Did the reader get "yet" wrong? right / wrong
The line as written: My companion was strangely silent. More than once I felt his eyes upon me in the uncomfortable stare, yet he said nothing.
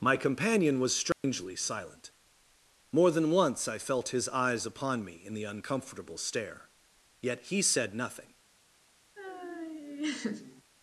right